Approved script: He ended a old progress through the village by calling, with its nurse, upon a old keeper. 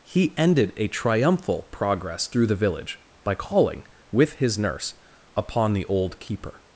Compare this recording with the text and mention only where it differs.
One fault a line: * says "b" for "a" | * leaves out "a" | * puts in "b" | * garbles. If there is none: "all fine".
* says "triumphal" for "old"
* says "his" for "its"
* says "the" for "a"